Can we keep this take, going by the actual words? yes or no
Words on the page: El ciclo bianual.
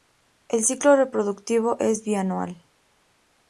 no